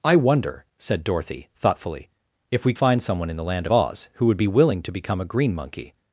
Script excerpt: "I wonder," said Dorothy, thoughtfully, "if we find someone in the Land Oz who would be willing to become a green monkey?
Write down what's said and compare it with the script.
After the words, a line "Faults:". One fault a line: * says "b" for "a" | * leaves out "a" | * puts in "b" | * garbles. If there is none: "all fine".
"I wonder," said Dorothy, thoughtfully, "if we find someone in the Land Oz who would be willing to become a green monkey?
Faults:
all fine